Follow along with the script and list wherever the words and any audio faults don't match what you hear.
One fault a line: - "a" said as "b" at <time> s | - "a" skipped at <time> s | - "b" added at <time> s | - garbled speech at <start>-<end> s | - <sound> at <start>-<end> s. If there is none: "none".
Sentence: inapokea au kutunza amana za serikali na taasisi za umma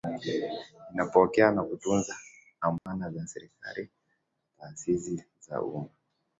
- "au" said as "na" at 1.5 s
- dropout at 2.8-2.9 s